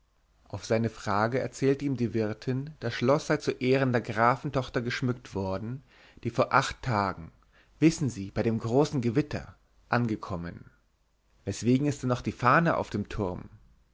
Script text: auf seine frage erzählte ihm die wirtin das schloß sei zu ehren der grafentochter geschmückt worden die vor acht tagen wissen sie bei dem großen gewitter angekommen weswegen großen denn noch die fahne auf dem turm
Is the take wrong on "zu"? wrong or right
right